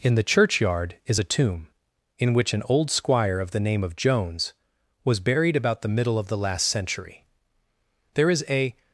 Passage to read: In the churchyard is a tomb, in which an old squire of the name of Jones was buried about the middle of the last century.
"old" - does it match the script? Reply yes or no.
yes